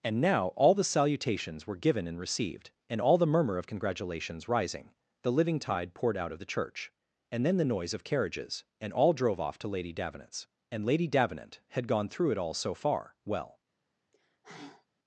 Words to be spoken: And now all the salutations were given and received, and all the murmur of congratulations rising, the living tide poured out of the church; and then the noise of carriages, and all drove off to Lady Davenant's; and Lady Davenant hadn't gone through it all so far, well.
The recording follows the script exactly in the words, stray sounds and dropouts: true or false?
false